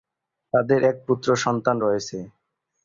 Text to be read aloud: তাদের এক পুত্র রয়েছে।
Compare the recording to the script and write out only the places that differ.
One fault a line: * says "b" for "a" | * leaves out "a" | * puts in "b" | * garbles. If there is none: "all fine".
* puts in "সন্তান"